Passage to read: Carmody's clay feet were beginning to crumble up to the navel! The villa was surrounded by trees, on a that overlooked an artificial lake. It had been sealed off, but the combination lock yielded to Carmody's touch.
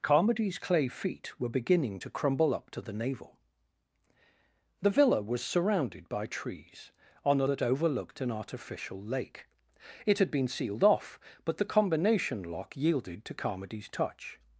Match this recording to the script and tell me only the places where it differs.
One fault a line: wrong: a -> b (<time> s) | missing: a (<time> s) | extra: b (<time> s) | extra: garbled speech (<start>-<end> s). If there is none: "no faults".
no faults